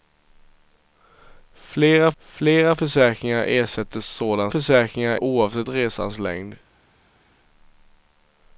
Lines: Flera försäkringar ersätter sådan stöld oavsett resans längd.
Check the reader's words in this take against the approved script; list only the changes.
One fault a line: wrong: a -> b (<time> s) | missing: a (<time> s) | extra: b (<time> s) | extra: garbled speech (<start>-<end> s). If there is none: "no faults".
extra: flera (2.2 s)
wrong: stöld -> försäkringar (4.5 s)